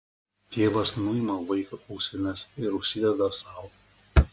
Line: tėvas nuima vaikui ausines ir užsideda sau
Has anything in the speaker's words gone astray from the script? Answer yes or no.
no